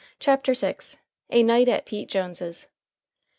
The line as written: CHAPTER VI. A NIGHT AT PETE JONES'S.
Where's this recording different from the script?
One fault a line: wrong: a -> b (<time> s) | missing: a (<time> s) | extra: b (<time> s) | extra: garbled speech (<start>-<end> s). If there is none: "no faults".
no faults